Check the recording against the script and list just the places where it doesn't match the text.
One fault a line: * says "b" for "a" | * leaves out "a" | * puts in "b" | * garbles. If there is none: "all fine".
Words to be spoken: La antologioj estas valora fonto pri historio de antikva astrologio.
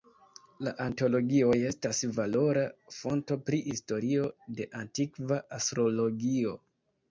all fine